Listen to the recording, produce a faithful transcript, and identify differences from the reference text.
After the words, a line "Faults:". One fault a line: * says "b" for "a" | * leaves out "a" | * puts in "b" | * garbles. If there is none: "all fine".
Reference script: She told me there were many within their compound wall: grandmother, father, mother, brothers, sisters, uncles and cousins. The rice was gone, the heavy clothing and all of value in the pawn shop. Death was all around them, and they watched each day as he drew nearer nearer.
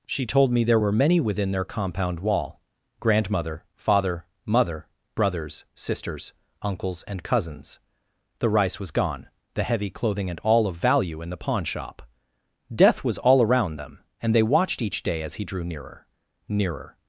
She told me there were many within their compound wall: grandmother, father, mother, brothers, sisters, uncles and cousins. The rice was gone, the heavy clothing and all of value in the pawn shop. Death was all around them, and they watched each day as he drew nearer nearer.
Faults:
all fine